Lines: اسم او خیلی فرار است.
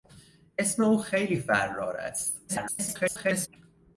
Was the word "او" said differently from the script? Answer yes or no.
no